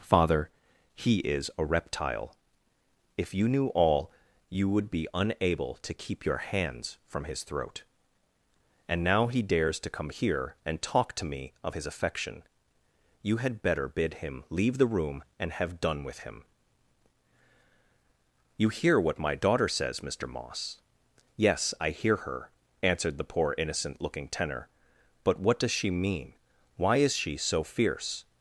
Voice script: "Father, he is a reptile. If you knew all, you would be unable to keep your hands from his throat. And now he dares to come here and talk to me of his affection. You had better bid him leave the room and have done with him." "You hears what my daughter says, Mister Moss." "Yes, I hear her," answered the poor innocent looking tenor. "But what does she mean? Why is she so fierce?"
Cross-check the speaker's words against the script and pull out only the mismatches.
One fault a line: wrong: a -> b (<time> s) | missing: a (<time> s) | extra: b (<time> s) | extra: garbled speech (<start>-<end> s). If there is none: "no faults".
wrong: hears -> hear (18.7 s)